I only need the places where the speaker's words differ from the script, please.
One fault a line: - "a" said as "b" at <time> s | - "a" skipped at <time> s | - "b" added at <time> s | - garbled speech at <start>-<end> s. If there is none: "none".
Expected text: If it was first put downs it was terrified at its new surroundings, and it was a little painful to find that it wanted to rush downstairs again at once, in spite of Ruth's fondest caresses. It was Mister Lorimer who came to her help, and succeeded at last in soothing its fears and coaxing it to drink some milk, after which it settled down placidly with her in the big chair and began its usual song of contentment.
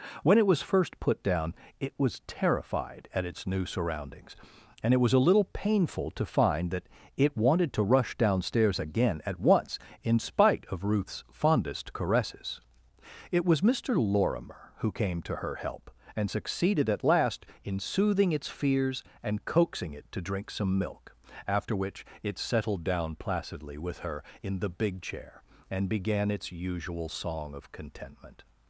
- "If" said as "When" at 0.2 s
- "downs" said as "down" at 1.2 s